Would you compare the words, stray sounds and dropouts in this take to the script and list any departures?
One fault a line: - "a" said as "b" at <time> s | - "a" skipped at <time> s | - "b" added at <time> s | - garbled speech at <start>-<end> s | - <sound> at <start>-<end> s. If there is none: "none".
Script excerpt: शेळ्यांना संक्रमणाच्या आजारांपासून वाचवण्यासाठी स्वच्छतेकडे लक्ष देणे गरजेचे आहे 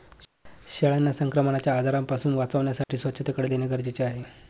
- dropout at 2.8-2.9 s
- "लक्ष" skipped at 3.5 s